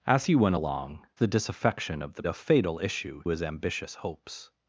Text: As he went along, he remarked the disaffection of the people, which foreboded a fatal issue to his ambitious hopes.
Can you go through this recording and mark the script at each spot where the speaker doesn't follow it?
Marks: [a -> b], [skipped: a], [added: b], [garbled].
As he went along, [skipped: he remarked] the disaffection of the [skipped: people, which foreboded] a fatal issue [skipped: to] his ambitious hopes.